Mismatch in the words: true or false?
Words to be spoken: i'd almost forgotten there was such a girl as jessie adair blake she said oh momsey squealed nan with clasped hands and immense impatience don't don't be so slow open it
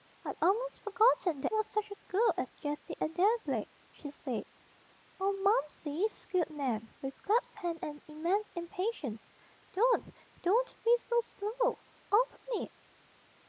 false